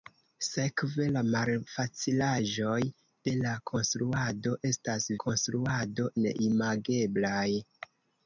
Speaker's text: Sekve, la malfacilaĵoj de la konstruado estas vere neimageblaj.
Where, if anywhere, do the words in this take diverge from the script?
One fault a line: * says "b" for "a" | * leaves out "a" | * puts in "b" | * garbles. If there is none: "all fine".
* says "konstruado" for "vere"